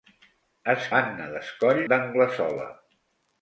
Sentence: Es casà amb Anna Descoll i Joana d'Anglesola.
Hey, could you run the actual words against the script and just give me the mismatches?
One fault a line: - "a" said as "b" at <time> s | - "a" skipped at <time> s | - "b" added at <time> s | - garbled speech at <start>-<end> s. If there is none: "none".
- "casà amb" skipped at 0.8 s
- "i Joana" skipped at 1.8 s